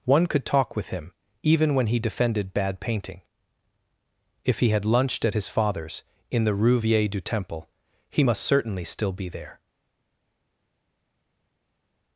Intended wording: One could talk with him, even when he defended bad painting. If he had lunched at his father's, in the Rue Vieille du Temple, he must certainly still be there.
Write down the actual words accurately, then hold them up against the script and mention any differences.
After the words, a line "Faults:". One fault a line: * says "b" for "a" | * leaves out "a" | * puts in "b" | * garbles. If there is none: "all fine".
One could talk with him, even when he defended bad painting. If he had lunched at his father's, in the Rue Vieille du Temple, he must certainly still be there.
Faults:
all fine